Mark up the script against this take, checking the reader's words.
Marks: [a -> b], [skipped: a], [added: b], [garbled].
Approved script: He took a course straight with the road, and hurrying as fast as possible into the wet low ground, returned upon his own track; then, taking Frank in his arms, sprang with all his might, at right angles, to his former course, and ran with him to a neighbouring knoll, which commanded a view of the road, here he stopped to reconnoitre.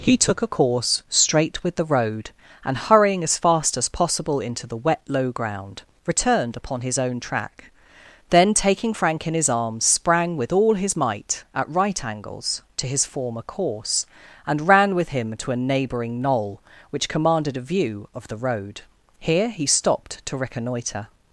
He took a course straight with the road, and hurrying as fast as possible into the wet low ground, returned upon his own track; then, taking Frank in his arms, sprang with all his might, at right angles, to his former course, and ran with him to a neighbouring knoll, which commanded a view of the road, here he stopped to reconnoitre.